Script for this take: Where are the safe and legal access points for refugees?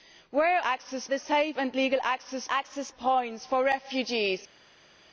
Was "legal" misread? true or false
false